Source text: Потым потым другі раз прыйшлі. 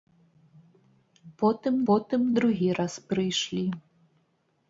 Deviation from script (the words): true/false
false